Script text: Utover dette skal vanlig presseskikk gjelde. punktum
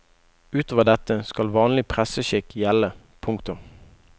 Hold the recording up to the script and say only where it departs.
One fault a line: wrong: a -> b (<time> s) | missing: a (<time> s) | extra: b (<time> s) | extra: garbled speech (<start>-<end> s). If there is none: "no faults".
no faults